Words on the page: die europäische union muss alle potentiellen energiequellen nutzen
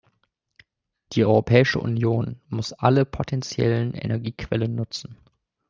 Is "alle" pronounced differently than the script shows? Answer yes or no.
no